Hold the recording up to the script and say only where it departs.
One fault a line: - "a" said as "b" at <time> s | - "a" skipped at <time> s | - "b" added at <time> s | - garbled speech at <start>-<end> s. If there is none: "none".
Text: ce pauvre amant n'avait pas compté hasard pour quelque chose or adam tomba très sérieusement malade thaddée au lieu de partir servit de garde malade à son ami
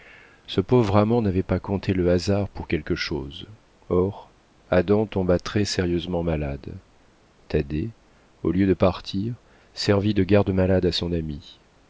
- "le" added at 1.9 s